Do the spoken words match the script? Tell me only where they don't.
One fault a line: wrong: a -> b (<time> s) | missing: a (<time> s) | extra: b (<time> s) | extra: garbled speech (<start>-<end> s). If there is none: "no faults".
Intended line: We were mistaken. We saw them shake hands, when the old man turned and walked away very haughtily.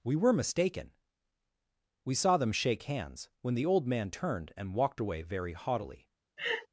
no faults